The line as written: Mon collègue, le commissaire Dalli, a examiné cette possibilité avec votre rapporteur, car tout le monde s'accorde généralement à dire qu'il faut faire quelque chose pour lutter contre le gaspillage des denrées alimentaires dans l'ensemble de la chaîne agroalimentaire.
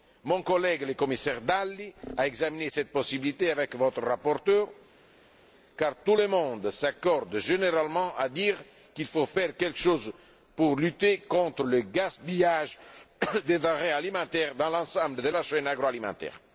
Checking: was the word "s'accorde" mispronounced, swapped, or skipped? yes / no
no